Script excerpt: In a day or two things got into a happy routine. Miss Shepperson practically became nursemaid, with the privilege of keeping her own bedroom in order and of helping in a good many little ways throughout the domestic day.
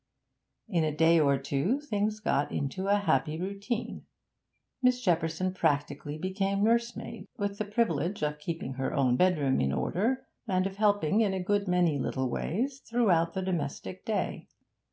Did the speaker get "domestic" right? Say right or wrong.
right